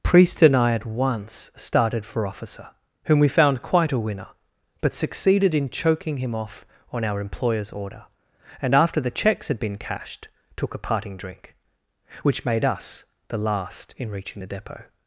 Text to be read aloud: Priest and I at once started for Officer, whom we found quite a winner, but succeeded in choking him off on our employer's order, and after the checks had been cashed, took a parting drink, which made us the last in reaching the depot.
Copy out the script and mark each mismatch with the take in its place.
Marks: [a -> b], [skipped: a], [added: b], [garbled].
Priest and I at once started for Officer, whom we found quite a winner, but succeeded in choking him off on our employer's order, and after the checks had been cashed, took a parting drink, which made us the last in reaching the depot.